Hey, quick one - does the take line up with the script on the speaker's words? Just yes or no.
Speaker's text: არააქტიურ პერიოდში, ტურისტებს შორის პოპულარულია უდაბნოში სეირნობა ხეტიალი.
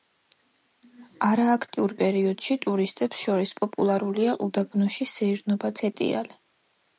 yes